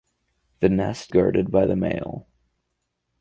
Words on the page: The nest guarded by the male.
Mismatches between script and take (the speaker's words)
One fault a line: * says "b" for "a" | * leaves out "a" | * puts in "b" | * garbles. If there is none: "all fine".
all fine